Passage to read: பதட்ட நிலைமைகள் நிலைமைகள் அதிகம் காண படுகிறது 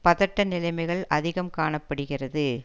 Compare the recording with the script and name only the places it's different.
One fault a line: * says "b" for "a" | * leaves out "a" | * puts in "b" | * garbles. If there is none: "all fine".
* leaves out "நிலைமைகள்"